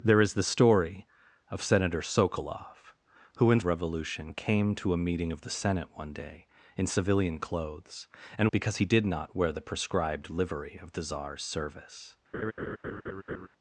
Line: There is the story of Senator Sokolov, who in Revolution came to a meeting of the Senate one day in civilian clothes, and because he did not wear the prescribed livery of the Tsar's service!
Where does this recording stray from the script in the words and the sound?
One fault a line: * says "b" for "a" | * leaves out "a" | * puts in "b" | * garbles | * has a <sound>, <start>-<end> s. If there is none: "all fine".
* has a laugh, 12.3-13.5 s